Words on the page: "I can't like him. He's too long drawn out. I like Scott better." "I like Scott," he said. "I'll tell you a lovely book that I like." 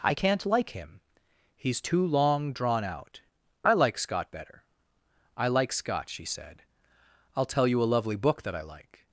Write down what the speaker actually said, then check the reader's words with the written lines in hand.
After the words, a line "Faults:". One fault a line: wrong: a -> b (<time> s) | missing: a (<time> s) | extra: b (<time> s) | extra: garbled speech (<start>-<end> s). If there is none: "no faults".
"I can't like him. He's too long drawn out. I like Scott better." "I like Scott," she said. "I'll tell you a lovely book that I like."
Faults:
wrong: he -> she (6.1 s)